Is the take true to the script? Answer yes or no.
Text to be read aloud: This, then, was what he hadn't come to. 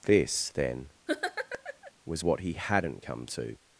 yes